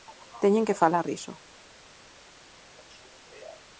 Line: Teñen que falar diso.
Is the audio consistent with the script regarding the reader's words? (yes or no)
yes